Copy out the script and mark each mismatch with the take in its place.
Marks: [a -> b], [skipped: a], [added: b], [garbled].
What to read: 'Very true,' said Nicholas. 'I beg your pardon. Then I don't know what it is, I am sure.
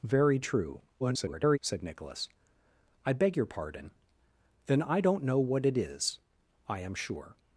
'Very true,' [garbled] said Nicholas. 'I beg your pardon. Then I don't know what it is, I am sure.